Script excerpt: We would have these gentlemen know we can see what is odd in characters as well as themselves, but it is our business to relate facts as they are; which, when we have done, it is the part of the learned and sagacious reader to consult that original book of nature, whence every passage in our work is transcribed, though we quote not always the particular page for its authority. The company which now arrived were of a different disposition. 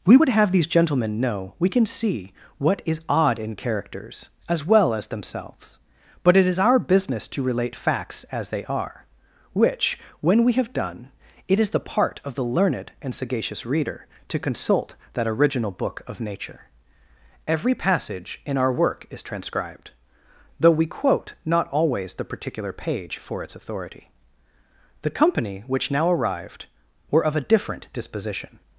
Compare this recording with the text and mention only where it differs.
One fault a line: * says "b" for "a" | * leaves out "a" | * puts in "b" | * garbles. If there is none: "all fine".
* leaves out "whence"